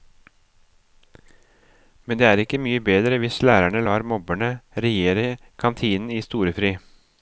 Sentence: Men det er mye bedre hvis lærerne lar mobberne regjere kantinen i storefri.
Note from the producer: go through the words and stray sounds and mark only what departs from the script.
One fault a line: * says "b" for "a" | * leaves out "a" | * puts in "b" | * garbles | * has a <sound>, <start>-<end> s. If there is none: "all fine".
* puts in "ikke"